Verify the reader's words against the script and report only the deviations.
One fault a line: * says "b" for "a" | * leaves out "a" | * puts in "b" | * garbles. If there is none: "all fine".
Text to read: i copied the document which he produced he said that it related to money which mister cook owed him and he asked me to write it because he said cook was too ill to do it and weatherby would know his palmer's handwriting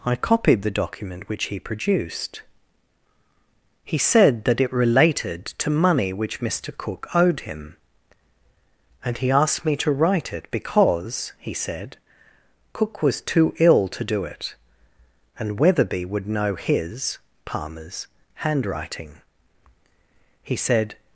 * puts in "he said"